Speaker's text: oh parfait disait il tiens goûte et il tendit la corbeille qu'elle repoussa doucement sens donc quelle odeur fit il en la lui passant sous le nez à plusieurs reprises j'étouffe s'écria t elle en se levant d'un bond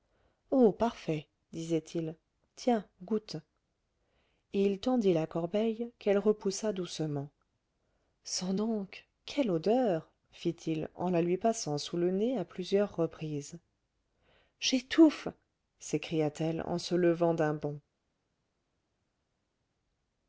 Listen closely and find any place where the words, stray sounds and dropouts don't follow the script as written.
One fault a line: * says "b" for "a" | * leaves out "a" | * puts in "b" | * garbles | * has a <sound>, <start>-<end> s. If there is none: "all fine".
all fine